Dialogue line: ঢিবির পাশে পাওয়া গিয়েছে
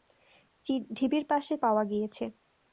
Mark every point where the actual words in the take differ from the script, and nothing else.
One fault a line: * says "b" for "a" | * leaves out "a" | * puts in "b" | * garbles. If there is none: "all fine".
all fine